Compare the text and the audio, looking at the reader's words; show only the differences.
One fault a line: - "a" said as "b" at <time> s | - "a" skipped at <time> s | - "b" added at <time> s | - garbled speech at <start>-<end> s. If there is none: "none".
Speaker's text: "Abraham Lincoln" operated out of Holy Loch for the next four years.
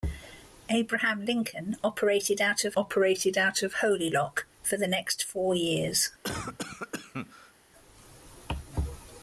- "operated out of" added at 2.8 s